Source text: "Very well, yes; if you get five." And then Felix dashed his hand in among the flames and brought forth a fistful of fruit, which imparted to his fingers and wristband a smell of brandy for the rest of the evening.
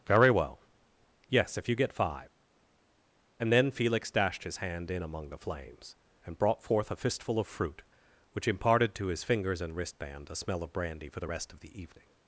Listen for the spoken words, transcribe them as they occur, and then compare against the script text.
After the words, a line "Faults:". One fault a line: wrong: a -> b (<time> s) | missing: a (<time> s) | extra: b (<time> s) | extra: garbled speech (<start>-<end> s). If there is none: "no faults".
"Very well, yes; if you get five." And then Felix dashed his hand in among the flames and brought forth a fistful of fruit, which imparted to his fingers and wristband a smell of brandy for the rest of the evening.
Faults:
no faults